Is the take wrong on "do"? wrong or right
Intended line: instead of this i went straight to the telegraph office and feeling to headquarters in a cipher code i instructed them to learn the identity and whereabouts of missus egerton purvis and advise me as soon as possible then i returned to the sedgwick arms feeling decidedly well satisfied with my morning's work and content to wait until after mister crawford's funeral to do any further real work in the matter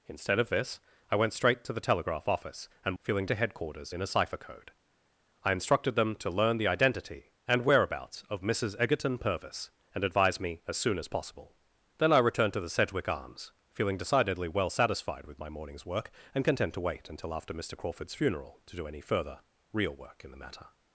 right